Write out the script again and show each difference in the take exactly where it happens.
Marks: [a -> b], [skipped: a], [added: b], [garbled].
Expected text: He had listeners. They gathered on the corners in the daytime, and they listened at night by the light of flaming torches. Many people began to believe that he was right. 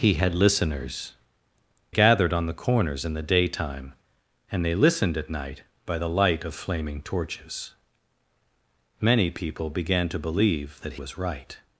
He had listeners. [skipped: They] gathered on the corners in the daytime, and they listened at night by the light of flaming torches. Many people began to believe that [skipped: he] was right.